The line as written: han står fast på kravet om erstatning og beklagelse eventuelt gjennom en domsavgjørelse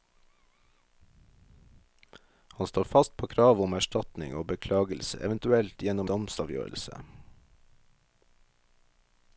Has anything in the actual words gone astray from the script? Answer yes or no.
yes